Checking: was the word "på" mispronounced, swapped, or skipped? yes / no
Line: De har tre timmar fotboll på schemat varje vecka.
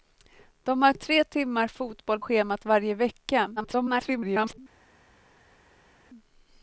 yes